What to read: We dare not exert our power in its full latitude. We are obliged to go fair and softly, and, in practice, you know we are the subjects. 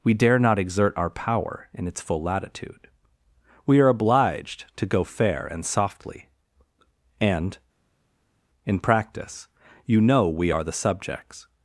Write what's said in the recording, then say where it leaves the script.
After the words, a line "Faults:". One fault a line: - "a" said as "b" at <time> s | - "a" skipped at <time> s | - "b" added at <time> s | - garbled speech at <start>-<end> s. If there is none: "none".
We dare not exert our power in its full latitude. We are obliged to go fair and softly, and, in practice, you know we are the subjects.
Faults:
none